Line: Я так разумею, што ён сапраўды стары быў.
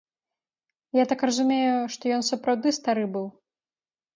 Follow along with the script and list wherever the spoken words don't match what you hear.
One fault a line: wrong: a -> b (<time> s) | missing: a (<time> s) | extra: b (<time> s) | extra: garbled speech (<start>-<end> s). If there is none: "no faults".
no faults